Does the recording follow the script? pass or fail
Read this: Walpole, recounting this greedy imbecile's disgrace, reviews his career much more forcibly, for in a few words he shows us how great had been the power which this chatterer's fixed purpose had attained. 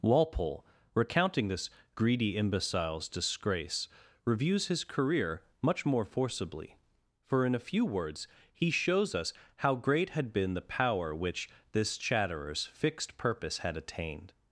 pass